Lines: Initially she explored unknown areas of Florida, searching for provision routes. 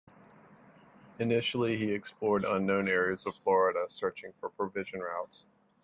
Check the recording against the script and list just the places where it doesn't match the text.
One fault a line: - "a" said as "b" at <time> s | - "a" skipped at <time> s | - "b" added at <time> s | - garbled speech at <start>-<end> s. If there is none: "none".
- "she" said as "he" at 1.8 s